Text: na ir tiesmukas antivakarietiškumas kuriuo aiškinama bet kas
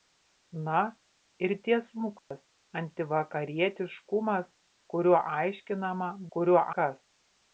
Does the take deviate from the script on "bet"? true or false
true